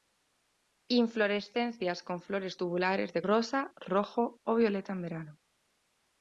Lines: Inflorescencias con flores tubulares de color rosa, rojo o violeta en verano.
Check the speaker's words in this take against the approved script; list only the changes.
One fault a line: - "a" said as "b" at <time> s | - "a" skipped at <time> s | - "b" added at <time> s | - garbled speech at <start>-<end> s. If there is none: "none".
- "color" skipped at 3.2 s